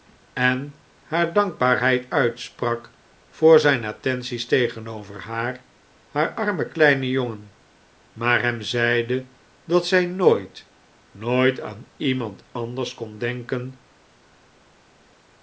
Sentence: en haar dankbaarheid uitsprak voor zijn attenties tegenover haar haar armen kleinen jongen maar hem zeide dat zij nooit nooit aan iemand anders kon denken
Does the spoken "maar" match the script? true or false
true